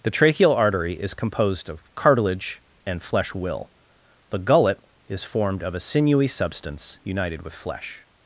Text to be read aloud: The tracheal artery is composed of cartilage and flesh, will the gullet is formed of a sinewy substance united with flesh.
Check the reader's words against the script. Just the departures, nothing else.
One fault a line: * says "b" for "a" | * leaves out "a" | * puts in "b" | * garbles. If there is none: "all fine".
all fine